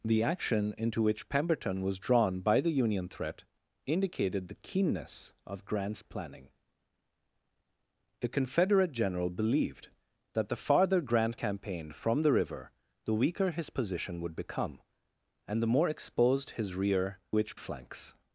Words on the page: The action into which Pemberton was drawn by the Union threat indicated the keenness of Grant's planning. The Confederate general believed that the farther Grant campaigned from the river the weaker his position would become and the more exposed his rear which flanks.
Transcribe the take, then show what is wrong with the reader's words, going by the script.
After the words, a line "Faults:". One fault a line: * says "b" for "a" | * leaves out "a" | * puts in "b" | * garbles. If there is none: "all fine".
The action into which Pemberton was drawn by the Union threat indicated the keenness of Grant's planning. The Confederate general believed that the farther Grant campaigned from the river the weaker his position would become and the more exposed his rear which flanks.
Faults:
all fine